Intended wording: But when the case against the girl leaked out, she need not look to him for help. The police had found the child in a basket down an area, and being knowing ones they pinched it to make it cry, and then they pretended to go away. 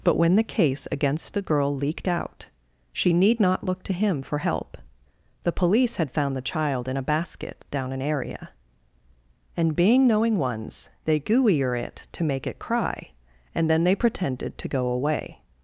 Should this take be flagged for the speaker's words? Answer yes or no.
yes